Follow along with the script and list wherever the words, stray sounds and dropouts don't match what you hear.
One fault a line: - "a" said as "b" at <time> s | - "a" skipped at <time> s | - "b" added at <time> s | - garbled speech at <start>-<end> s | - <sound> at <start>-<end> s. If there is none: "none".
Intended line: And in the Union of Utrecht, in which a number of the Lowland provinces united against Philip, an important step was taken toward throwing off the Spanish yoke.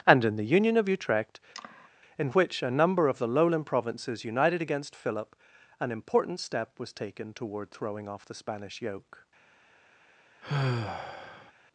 - sigh at 1.5-1.9 s
- sigh at 10.4-11.5 s